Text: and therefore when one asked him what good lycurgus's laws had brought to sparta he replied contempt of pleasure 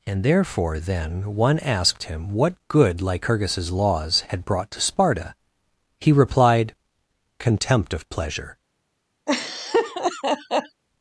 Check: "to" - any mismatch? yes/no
no